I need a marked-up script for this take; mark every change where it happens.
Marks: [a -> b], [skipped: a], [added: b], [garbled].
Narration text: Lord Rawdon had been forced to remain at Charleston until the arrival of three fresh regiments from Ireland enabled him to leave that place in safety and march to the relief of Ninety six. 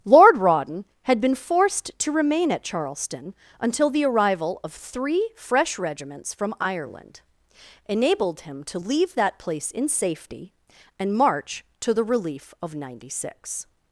Lord Rawdon had been forced to remain at Charleston until the arrival of three fresh regiments from Ireland enabled him to leave that place in safety and march to the relief of Ninety six.